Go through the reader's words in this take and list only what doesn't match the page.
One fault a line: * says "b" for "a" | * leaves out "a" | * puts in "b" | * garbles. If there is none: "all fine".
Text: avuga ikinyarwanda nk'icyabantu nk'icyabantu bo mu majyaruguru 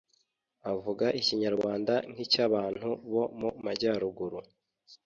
* leaves out "nk'icyabantu"